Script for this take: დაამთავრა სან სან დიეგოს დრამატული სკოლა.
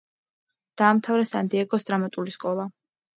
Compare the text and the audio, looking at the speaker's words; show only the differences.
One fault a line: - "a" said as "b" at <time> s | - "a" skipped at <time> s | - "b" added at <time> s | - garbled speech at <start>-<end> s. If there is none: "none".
- "სან" skipped at 1.5 s